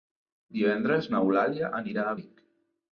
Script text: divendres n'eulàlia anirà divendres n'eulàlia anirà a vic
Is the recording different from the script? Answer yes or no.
yes